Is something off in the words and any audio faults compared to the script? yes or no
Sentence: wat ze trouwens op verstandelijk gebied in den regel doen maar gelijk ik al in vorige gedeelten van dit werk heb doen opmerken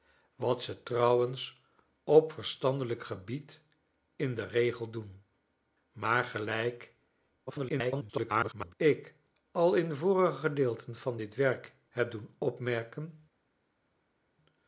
yes